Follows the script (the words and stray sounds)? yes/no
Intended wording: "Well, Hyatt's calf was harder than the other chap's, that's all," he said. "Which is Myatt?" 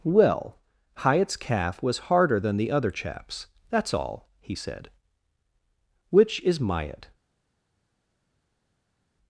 yes